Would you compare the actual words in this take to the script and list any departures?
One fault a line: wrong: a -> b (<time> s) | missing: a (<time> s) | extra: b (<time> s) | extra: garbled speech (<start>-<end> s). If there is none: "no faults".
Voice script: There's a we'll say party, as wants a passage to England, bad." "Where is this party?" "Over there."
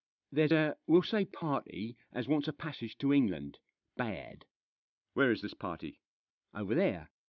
no faults